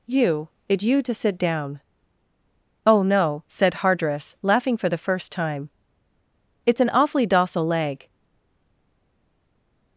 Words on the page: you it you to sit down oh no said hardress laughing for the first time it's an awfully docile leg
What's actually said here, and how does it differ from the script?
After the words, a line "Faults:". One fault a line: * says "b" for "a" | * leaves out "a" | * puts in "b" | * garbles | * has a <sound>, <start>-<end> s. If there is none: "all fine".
you it you to sit down oh no said hardress laughing for the first time it's an awfully docile leg
Faults:
all fine